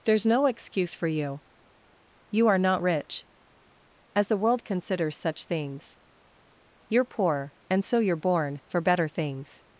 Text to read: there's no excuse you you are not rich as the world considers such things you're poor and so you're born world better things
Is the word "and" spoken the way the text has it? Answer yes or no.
yes